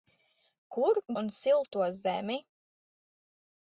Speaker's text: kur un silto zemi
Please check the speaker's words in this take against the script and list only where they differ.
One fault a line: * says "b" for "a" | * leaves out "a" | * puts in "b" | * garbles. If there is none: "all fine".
all fine